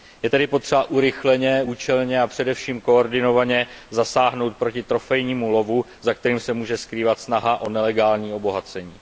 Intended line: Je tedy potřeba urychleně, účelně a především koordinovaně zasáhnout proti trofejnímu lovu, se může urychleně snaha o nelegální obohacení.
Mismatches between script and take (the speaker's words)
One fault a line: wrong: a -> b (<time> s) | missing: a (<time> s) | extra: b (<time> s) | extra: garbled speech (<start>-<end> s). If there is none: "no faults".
extra: za kterým (6.0 s)
wrong: urychleně -> skrývat (6.8 s)